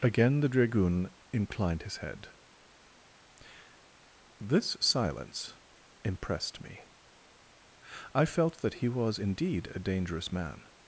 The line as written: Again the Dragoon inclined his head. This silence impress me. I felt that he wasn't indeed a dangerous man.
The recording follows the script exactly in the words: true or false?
false